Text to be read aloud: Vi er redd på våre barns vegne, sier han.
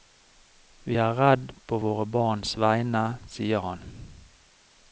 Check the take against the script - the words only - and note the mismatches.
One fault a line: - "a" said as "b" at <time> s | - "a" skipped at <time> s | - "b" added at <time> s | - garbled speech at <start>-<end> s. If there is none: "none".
none